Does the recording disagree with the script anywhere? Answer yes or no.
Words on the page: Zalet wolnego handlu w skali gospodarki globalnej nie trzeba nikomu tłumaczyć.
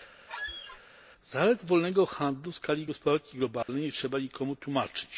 no